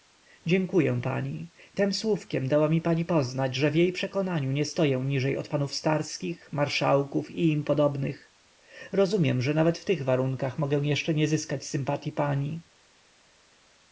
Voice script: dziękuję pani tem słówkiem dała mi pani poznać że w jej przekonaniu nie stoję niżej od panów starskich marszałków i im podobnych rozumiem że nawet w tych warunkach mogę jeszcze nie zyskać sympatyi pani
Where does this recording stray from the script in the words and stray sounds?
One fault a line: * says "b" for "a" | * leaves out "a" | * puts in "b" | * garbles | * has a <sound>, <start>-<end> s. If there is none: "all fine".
all fine